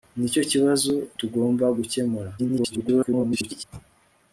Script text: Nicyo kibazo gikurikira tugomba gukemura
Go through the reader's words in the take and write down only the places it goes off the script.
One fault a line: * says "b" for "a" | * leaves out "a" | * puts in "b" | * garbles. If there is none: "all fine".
* leaves out "gikurikira"
* garbles